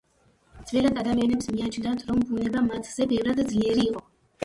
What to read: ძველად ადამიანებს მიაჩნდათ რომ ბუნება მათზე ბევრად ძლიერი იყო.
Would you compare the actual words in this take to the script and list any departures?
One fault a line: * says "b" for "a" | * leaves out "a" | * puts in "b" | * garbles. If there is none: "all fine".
all fine